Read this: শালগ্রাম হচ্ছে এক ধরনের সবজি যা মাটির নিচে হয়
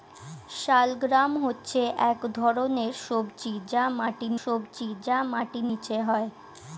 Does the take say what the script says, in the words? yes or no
no